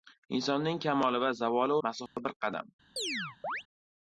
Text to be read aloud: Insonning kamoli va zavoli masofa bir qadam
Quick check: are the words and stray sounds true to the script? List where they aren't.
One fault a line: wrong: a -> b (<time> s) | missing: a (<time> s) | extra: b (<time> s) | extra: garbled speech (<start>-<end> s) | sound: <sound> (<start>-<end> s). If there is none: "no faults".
sound: dropout (2.1-2.2 s)
sound: chirp (3.0-3.6 s)